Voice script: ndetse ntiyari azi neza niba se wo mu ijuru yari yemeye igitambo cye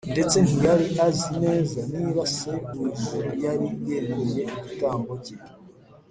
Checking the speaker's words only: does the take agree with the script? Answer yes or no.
no